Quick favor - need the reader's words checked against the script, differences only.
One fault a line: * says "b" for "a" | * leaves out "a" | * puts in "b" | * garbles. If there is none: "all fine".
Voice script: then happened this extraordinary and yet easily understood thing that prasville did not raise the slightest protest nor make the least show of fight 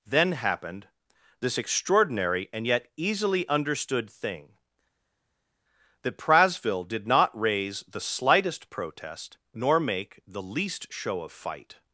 all fine